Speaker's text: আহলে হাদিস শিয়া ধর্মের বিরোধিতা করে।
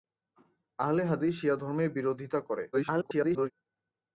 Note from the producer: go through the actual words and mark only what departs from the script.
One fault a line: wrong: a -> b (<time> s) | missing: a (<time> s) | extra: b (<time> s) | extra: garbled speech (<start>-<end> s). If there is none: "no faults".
extra: garbled speech (2.7-3.5 s)